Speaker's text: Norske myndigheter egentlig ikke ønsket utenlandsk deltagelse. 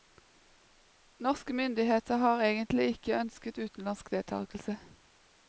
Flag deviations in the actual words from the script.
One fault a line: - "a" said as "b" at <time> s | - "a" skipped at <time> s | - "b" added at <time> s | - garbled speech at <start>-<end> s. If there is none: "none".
- "har" added at 2.2 s